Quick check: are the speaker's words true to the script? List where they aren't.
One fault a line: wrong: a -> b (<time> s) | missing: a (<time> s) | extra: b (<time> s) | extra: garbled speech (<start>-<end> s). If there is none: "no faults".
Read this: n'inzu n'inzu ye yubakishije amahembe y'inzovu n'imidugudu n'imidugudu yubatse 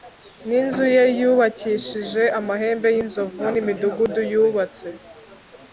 missing: n'inzu (0.9 s)
missing: n'imidugudu (4.2 s)